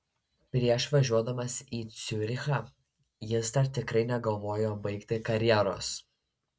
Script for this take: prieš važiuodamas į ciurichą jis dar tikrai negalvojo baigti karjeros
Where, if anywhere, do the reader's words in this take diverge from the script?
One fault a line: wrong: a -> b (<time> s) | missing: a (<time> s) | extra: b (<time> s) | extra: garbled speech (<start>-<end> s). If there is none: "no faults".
no faults